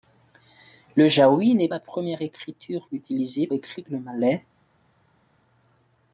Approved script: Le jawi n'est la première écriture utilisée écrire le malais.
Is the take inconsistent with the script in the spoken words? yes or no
no